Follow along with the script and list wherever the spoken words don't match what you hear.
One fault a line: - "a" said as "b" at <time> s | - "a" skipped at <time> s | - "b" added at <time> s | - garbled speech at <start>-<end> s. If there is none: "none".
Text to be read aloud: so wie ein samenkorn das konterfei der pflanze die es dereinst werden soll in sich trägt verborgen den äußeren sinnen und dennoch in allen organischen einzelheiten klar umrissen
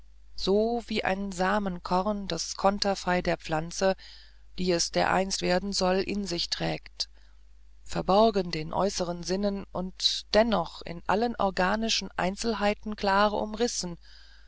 none